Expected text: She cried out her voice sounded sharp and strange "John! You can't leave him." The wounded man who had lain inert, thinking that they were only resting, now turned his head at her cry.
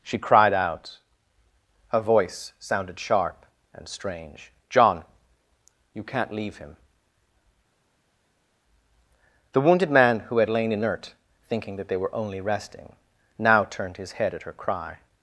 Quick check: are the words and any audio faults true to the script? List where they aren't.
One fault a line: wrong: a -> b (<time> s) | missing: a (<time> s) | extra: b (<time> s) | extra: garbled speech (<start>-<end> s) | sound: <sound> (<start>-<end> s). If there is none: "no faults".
no faults